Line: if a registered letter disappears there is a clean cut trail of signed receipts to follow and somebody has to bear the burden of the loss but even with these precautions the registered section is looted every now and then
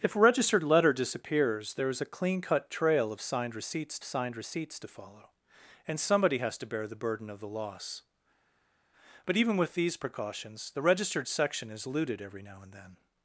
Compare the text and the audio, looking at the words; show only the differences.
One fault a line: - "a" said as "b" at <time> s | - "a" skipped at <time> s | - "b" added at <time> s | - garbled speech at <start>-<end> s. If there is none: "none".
- "signed receipts" added at 4.0 s